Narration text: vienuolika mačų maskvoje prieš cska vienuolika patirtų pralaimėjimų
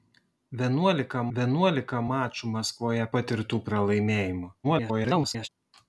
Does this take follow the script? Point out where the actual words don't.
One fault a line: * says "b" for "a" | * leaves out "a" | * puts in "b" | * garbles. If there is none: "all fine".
* puts in "vienuolika"
* leaves out "prieš cska vienuolika"
* garbles